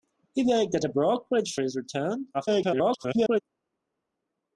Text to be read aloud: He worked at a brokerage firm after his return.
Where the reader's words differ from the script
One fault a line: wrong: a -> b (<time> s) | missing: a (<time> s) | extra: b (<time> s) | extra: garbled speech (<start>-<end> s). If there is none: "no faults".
missing: firm after (1.6 s)
extra: garbled speech (2.3-3.4 s)